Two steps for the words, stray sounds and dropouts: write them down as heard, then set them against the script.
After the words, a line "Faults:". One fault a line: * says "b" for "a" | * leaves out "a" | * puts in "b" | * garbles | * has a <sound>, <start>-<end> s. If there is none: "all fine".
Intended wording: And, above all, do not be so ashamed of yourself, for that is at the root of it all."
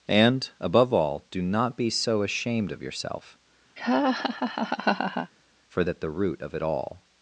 And, above all, do not be so ashamed of yourself, for at the root of it all."
Faults:
* has a laugh, 3.8-5.3 s
* leaves out "that is"